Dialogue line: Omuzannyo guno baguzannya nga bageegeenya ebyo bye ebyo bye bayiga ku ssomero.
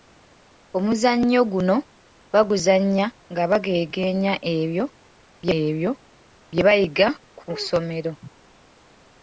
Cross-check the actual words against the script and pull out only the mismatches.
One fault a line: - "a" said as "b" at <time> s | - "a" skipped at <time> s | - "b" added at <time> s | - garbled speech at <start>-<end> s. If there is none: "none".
none